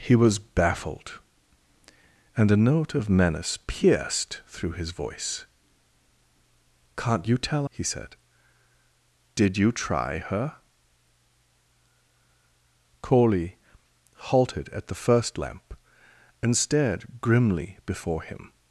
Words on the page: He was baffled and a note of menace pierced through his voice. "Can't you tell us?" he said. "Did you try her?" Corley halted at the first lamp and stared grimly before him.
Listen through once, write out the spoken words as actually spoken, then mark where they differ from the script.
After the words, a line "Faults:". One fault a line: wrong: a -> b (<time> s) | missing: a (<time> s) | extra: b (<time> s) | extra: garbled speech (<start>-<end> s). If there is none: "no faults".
He was baffled and a note of menace pierced through his voice. "Can't you tell?" he said. "Did you try her?" Corley halted at the first lamp and stared grimly before him.
Faults:
missing: us (7.7 s)